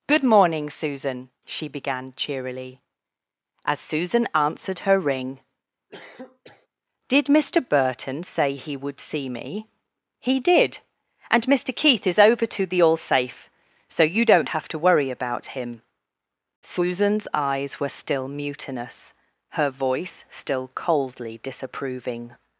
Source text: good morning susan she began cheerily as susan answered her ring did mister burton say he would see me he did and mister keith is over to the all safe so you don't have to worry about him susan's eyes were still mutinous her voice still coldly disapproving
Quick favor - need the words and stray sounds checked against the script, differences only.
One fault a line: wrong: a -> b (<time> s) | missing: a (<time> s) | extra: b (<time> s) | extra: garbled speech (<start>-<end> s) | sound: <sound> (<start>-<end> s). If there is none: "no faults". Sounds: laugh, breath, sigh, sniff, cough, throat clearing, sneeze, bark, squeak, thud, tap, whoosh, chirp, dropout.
sound: cough (5.9-6.7 s)